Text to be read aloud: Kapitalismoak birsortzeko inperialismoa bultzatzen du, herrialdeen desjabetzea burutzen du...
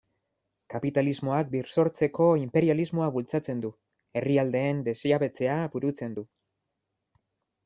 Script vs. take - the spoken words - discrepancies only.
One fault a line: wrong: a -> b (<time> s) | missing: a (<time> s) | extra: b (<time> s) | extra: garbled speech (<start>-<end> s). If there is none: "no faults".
no faults